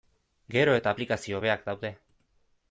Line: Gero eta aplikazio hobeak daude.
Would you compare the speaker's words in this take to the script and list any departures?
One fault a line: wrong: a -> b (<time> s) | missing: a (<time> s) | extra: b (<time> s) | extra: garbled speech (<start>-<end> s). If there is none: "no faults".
no faults